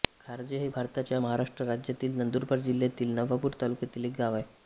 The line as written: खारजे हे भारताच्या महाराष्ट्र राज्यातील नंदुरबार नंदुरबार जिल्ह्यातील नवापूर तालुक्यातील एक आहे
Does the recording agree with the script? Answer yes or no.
no